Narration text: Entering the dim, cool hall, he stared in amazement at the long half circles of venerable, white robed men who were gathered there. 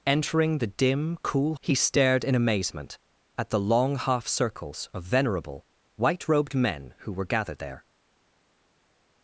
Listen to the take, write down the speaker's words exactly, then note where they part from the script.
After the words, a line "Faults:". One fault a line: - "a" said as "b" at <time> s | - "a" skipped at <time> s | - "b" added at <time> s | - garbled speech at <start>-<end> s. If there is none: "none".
Entering the dim, cool he stared in amazement at the long half circles of venerable, white robed men who were gathered there.
Faults:
- "hall" skipped at 1.6 s